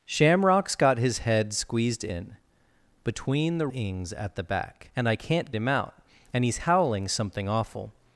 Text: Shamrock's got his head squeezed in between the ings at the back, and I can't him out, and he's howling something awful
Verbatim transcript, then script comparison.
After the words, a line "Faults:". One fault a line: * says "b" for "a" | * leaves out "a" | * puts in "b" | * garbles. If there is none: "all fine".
Shamrock's got his head squeezed in between the ings at the back, and I can't him out, and he's howling something awful
Faults:
all fine